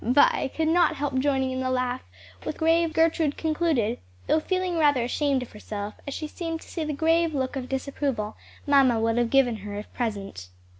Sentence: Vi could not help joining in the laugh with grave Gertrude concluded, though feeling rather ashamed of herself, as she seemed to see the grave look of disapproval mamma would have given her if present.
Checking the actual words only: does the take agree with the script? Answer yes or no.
yes